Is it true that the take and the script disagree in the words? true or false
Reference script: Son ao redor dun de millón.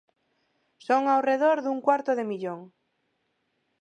true